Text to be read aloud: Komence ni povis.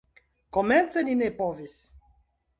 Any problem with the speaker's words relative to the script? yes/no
yes